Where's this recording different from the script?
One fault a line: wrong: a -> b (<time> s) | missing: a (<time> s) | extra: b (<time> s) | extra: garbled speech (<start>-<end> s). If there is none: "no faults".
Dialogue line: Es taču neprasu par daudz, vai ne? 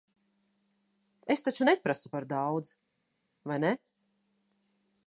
no faults